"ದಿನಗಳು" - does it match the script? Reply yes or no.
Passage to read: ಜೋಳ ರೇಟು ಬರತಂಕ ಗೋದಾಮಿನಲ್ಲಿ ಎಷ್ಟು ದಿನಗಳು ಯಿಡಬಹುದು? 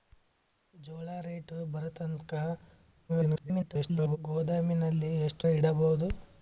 no